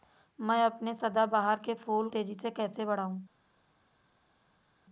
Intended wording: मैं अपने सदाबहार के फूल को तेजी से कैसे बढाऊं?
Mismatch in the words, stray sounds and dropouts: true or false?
true